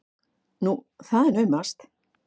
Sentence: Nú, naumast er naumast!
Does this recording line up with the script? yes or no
no